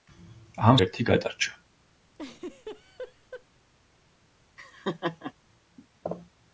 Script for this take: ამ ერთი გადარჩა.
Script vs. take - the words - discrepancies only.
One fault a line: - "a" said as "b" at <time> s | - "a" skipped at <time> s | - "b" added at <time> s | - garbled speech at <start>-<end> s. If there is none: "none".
none